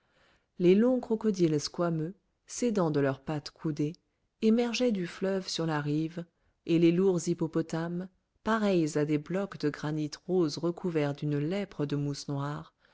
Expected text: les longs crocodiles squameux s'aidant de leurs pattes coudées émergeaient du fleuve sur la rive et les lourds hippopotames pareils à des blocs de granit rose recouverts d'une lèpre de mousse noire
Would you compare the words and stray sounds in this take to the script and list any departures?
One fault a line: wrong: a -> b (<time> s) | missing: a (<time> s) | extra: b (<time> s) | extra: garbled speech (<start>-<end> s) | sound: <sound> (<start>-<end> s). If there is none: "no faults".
no faults